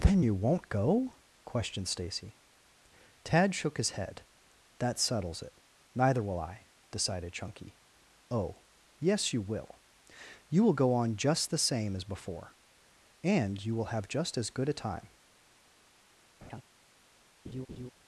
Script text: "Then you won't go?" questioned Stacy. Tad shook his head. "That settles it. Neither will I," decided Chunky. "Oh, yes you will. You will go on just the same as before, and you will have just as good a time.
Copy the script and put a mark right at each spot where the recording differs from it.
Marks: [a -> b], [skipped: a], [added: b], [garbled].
"Then you won't go?" questioned Stacy. Tad shook his head. "That settles it. Neither will I," decided Chunky. "Oh, yes you will. You will go on just the same as before, and you will have just as good a time.